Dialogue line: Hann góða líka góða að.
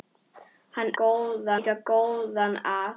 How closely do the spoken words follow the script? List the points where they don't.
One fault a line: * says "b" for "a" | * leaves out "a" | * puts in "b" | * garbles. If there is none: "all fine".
all fine